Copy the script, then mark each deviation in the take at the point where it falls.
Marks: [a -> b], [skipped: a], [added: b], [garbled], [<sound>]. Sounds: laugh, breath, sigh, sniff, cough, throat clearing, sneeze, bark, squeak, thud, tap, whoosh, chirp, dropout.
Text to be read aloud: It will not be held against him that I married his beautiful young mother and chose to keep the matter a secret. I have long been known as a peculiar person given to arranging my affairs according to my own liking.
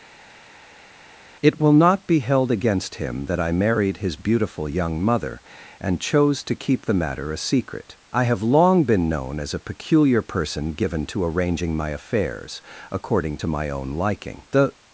It will not be held against him that I married his beautiful young mother and chose to keep the matter a secret. I have long been known as a peculiar person given to arranging my affairs according to my own liking. [added: The]